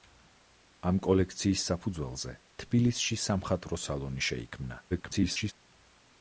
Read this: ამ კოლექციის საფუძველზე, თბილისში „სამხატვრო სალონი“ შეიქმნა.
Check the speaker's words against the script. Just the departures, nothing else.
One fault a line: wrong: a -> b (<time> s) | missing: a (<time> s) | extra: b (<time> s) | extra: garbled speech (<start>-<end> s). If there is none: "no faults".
extra: garbled speech (4.9-5.5 s)